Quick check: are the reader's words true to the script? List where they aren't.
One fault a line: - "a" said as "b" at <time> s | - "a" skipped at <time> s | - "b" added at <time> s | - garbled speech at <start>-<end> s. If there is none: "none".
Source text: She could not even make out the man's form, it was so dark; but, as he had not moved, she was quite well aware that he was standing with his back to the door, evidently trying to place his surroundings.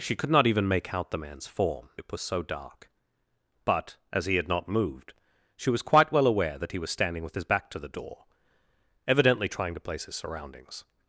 none